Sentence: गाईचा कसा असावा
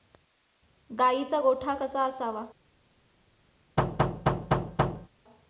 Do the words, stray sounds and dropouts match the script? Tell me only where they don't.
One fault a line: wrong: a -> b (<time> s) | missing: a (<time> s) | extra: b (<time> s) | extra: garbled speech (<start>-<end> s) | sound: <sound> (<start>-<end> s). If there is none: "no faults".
extra: गोठा (1.4 s)
sound: thud (3.8-5.1 s)